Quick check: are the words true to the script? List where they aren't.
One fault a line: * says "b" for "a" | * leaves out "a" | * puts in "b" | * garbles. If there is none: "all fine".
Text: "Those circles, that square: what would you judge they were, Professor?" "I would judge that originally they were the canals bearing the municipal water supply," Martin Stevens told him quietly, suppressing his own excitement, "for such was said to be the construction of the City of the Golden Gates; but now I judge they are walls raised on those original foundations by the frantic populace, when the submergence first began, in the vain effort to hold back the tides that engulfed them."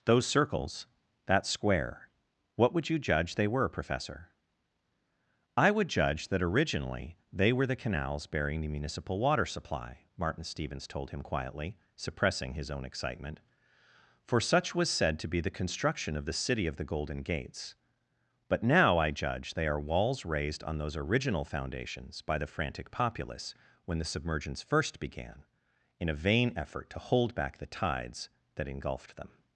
* says "a" for "the"